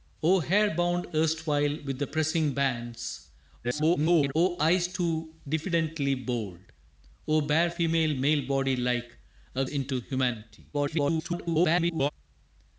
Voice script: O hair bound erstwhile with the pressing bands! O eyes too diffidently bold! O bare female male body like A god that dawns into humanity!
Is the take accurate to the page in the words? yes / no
no